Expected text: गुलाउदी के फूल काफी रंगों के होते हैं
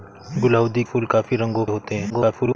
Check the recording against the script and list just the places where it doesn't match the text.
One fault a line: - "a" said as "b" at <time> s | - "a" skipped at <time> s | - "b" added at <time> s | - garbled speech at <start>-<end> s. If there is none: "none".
- "के" skipped at 0.8 s
- "के" skipped at 1.6 s
- garbled speech at 2.1-2.6 s